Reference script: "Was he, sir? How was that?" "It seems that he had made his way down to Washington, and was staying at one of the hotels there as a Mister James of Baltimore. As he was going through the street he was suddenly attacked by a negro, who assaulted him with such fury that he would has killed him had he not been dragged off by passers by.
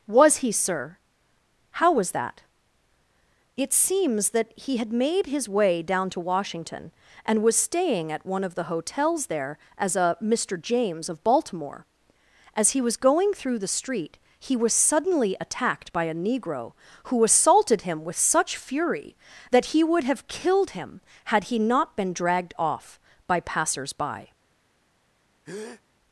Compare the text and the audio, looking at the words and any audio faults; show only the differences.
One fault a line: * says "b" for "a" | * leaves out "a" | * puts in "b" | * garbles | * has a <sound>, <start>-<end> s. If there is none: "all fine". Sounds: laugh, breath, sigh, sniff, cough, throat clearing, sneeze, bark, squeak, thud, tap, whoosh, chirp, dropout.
* says "have" for "has"
* has a breath, 25.4-25.8 s